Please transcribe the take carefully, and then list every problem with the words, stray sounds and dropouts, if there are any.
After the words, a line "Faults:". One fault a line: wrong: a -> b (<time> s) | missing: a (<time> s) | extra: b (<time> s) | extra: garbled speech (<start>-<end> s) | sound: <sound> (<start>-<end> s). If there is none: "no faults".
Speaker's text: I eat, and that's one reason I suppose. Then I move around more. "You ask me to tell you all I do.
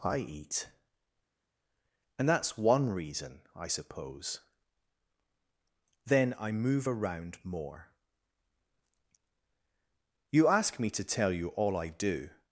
I eat, and that's one reason I suppose. Then I move around more. "You ask me to tell you all I do.
Faults:
no faults